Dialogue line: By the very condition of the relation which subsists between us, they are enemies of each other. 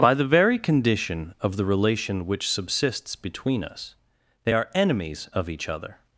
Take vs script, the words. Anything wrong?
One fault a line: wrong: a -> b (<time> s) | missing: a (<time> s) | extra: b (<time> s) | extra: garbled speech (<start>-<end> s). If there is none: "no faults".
no faults